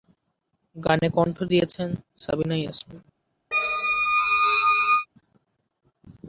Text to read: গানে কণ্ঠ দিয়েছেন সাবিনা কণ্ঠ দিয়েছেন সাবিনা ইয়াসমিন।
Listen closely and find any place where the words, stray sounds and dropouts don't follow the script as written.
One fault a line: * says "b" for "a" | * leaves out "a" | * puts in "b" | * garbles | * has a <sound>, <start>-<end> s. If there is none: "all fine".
* leaves out "কণ্ঠ দিয়েছেন সাবিনা"
* has a squeak, 3.5-5.1 s